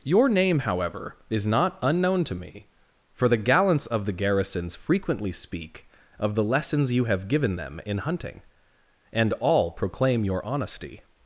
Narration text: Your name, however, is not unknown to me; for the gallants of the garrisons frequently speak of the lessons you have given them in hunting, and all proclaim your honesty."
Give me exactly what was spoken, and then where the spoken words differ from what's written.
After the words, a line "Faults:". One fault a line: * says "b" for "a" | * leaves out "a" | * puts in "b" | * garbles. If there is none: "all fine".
Your name, however, is not unknown to me; for the gallants of the garrisons frequently speak of the lessons you have given them in hunting, and all proclaim your honesty."
Faults:
all fine